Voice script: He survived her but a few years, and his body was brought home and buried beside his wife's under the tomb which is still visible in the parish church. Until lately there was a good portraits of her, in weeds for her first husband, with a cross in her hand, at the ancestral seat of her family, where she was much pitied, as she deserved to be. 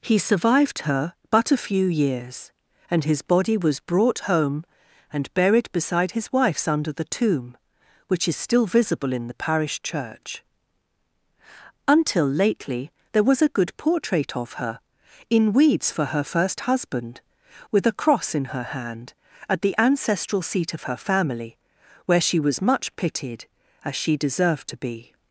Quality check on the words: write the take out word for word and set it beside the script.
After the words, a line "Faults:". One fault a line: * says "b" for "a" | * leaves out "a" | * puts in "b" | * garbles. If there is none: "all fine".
He survived her but a few years, and his body was brought home and buried beside his wife's under the tomb which is still visible in the parish church. Until lately there was a good portrait of her, in weeds for her first husband, with a cross in her hand, at the ancestral seat of her family, where she was much pitied, as she deserved to be.
Faults:
* says "portrait" for "portraits"